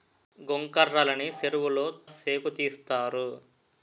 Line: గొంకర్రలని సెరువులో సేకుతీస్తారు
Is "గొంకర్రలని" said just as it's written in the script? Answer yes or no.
yes